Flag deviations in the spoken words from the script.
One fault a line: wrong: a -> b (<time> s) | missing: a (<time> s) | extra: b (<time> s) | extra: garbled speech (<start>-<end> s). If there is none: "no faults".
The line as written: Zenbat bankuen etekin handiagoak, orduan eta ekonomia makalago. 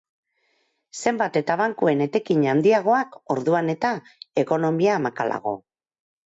extra: eta (1.4 s)